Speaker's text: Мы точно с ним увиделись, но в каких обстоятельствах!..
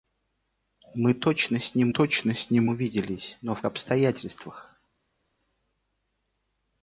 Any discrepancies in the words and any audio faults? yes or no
yes